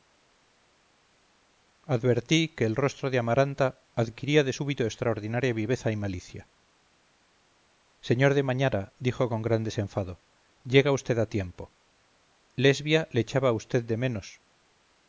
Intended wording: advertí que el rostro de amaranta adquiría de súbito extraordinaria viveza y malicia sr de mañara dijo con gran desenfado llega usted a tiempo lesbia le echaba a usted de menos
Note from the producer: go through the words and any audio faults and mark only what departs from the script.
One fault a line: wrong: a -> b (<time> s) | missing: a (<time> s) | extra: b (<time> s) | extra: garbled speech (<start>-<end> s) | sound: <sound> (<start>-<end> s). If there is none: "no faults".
no faults